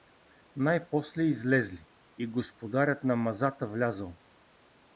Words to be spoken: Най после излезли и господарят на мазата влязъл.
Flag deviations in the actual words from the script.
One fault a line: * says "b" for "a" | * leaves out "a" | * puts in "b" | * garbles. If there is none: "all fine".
all fine